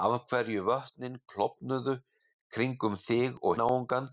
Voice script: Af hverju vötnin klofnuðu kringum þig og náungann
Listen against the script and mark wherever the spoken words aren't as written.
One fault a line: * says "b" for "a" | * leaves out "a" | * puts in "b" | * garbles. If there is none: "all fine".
all fine